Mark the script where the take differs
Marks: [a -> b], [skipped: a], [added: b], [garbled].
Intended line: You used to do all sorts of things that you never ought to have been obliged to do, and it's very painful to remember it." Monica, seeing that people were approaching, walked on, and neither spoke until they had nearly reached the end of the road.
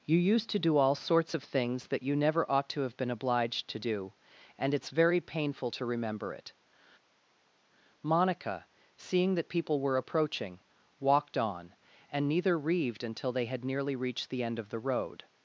You used to do all sorts of things that you never ought to have been obliged to do, and it's very painful to remember it." Monica, seeing that people were approaching, walked on, and neither [spoke -> reaved] until they had nearly reached the end of the road.